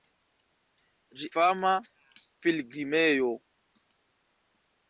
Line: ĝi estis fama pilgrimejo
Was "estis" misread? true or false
true